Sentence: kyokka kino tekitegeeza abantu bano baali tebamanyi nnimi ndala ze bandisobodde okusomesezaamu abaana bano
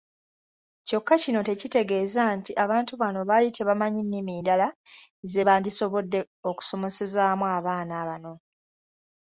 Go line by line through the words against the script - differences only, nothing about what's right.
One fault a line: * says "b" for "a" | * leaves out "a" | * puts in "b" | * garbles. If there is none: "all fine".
* puts in "nti"